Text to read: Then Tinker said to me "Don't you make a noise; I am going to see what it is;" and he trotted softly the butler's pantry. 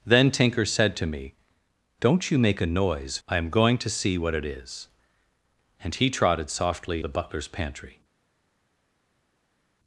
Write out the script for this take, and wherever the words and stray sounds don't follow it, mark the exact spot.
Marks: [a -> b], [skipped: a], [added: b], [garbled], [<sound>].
Then Tinker said to me "Don't you make a noise; I am going to see what it is;" and he trotted softly the butler's pantry.